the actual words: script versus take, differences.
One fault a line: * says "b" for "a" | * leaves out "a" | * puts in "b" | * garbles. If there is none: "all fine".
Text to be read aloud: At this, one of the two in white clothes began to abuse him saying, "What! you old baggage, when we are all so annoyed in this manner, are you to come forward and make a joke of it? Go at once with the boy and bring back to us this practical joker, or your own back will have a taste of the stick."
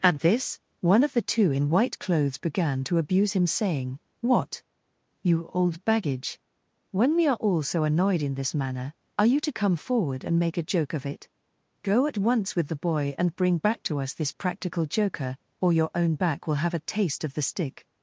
all fine